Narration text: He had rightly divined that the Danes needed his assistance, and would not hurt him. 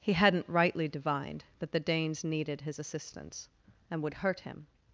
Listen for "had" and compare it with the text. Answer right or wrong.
wrong